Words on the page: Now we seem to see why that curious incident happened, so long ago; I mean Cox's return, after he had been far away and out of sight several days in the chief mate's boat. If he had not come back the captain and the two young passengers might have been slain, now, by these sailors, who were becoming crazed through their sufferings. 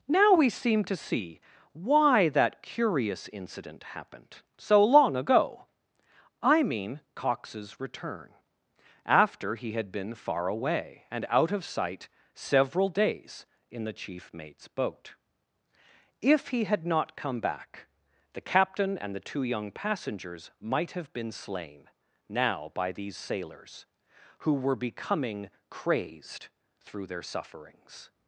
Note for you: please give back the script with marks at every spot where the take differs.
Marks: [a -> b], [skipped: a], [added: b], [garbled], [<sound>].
Now we seem to see why that curious incident happened, so long ago; I mean Cox's return, after he had been far away and out of sight several days in the chief mate's boat. If he had not come back the captain and the two young passengers might have been slain, now, by these sailors, who were becoming crazed through their sufferings.